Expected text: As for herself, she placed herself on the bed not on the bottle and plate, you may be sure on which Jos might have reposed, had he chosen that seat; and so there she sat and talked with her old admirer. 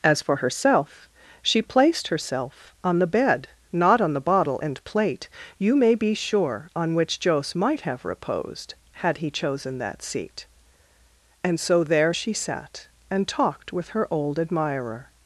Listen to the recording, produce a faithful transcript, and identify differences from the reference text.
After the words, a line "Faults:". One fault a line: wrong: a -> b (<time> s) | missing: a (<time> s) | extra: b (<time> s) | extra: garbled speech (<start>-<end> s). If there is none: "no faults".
As for herself, she placed herself on the bed not on the bottle and plate, you may be sure on which Jos might have reposed, had he chosen that seat; and so there she sat and talked with her old admirer.
Faults:
no faults